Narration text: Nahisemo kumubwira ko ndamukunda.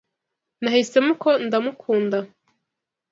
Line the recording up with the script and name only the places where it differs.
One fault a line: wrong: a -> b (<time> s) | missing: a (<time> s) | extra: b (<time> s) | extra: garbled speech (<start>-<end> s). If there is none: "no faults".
missing: kumubwira (1.1 s)